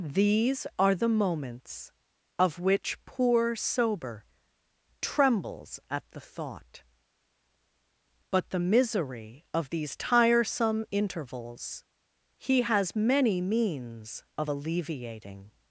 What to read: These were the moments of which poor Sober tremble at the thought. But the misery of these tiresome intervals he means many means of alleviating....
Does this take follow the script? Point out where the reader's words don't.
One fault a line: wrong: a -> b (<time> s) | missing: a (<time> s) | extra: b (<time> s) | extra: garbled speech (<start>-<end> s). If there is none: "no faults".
wrong: were -> are (0.8 s)
wrong: tremble -> trembles (5.0 s)
wrong: means -> has (12.6 s)